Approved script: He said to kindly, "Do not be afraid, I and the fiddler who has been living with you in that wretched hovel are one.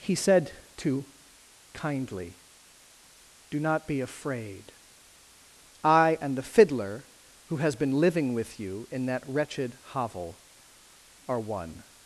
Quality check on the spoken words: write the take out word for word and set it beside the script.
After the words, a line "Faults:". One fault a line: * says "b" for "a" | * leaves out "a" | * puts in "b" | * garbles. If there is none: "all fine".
He said to kindly, "Do not be afraid, I and the fiddler who has been living with you in that wretched hovel are one.
Faults:
all fine